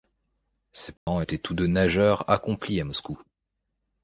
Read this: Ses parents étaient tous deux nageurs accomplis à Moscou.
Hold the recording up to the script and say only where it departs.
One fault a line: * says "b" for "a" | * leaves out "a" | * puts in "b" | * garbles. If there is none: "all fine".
all fine